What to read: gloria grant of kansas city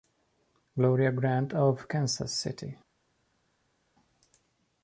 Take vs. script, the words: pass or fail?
pass